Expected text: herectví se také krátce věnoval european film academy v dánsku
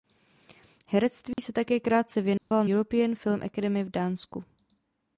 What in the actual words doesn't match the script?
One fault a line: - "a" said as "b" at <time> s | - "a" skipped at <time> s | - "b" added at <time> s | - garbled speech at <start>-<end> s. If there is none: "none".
none